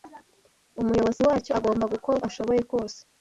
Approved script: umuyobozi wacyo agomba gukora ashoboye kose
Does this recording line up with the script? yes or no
yes